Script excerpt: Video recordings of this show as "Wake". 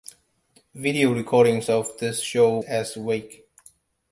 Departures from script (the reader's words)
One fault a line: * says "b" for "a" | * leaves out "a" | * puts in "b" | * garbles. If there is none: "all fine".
all fine